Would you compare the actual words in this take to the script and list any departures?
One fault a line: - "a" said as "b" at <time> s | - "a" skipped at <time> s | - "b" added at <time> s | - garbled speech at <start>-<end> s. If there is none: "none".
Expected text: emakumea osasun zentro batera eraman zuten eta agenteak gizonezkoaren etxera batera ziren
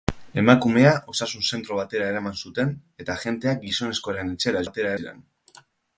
none